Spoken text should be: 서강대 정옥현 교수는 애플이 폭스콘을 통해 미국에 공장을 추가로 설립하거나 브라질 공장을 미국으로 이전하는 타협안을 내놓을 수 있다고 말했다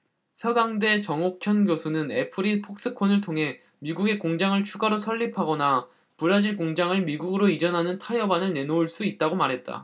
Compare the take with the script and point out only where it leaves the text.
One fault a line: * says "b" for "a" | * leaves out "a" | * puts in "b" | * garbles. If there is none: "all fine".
all fine